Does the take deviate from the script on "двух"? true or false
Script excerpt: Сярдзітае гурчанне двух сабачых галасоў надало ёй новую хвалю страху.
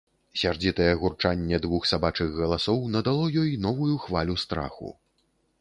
false